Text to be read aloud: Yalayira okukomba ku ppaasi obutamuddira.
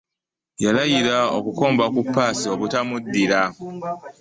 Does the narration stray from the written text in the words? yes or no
no